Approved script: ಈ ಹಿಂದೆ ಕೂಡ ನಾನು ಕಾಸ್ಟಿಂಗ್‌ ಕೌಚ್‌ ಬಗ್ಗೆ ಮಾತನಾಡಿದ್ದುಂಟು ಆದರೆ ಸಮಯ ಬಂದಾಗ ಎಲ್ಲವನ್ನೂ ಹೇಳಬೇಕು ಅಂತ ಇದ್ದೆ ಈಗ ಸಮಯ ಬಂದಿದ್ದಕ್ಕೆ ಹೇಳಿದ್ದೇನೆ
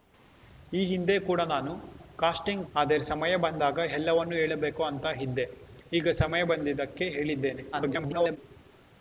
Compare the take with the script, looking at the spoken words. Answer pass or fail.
fail